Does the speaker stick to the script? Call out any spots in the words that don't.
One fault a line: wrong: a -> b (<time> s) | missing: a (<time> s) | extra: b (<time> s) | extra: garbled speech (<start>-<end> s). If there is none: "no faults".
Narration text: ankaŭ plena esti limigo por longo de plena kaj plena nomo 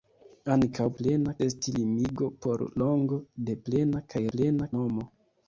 no faults